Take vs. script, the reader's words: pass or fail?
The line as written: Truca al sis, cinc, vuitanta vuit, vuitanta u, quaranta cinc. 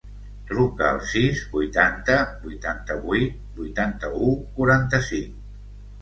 fail